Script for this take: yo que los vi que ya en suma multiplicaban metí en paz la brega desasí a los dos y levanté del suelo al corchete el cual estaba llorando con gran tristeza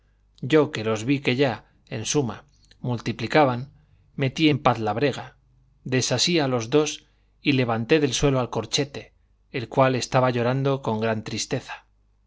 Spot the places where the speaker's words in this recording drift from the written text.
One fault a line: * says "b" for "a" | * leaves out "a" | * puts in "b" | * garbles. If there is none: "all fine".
all fine